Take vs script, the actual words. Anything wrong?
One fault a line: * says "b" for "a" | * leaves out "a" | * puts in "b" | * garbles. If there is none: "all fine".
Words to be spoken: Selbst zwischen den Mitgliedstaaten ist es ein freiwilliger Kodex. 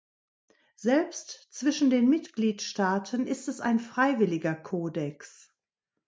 all fine